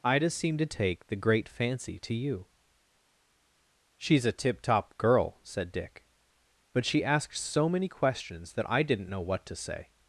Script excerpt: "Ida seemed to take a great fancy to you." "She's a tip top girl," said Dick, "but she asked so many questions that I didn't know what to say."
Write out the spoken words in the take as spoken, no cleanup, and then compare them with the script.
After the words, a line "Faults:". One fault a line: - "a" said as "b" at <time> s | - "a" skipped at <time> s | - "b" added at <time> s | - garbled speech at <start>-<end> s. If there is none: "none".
"Ida seemed to take the great fancy to you." "She's a tip top girl," said Dick, "but she asked so many questions that I didn't know what to say."
Faults:
- "a" said as "the" at 1.1 s